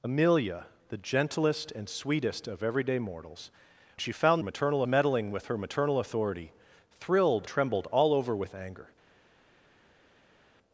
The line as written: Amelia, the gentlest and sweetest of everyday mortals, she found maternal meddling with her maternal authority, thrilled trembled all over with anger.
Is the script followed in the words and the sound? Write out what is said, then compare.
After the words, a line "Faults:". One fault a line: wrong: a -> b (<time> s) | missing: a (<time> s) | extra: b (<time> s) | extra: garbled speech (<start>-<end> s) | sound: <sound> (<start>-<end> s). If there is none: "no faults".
Amelia, the gentlest and sweetest of everyday mortals, she found maternal meddling with her maternal authority, thrilled trembled all over with anger.
Faults:
no faults